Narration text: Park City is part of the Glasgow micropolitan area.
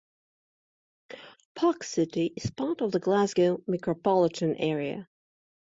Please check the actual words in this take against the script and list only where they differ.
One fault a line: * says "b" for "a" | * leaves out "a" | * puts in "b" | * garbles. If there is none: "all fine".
all fine